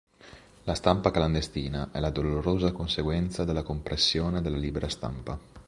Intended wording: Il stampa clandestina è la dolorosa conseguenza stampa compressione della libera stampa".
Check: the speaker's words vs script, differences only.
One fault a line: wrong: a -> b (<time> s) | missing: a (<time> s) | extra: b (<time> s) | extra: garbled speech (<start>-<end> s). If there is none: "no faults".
wrong: Il -> La (0.6 s)
wrong: stampa -> della (3.4 s)